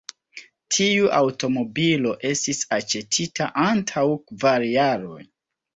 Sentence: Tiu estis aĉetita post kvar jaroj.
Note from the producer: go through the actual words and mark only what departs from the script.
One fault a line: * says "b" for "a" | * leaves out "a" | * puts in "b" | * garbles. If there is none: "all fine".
* puts in "aŭtomobilo"
* says "antaŭ" for "post"